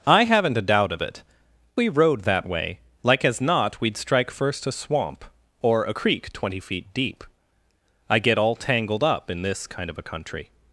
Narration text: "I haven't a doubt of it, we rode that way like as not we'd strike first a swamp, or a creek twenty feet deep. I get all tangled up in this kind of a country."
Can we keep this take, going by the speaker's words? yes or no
yes